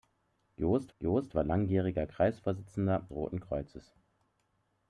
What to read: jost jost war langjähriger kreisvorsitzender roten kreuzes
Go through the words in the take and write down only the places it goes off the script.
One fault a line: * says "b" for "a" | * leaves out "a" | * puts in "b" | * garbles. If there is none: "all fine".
all fine